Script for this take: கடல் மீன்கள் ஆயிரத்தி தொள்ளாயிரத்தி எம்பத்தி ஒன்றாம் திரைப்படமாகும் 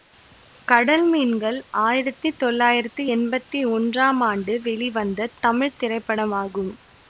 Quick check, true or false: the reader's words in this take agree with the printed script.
false